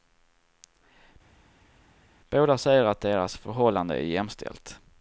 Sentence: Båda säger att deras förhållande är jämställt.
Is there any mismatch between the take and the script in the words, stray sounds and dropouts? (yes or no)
no